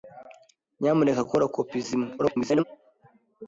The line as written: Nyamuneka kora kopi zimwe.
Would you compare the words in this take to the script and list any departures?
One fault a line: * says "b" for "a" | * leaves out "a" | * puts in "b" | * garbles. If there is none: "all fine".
* garbles